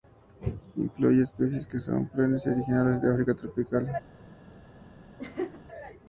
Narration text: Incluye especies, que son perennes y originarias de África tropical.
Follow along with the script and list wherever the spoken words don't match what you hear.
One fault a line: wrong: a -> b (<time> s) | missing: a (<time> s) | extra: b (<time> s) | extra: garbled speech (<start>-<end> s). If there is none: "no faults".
no faults